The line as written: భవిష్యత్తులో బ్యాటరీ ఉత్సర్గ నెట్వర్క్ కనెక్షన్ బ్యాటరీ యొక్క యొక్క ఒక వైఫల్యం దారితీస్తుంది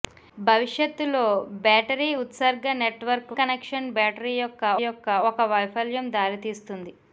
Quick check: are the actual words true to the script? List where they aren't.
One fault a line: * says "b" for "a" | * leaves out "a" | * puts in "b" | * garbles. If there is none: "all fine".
all fine